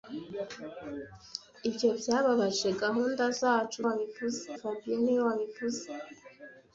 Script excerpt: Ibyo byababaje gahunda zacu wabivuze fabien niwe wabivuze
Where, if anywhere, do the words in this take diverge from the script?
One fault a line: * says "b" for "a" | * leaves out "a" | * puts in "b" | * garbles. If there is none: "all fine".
all fine